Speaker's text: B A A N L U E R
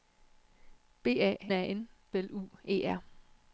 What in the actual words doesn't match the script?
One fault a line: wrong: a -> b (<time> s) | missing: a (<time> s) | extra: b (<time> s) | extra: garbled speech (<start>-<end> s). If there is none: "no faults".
no faults